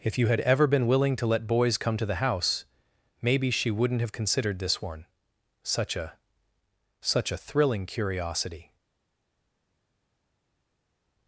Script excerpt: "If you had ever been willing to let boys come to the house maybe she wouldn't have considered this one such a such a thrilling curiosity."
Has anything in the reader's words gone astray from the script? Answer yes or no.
no